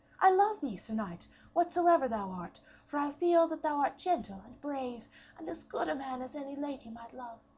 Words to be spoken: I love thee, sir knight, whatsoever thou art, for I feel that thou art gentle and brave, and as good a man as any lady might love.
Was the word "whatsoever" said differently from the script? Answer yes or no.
no